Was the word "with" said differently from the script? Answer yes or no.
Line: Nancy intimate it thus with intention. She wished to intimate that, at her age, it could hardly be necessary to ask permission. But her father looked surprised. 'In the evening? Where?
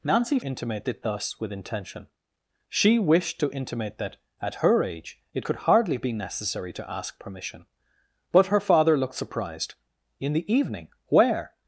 no